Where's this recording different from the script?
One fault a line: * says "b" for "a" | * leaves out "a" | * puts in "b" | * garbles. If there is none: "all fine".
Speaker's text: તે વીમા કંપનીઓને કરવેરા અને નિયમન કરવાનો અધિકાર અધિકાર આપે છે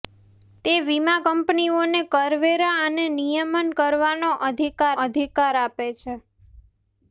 all fine